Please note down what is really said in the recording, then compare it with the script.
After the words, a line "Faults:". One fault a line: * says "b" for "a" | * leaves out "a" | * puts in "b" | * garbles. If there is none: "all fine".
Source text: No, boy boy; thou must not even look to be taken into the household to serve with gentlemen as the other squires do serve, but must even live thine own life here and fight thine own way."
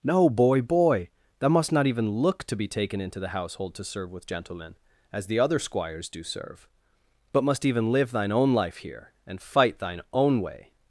No, boy boy; thou must not even look to be taken into the household to serve with gentlemen as the other squires do serve, but must even live thine own life here and fight thine own way."
Faults:
all fine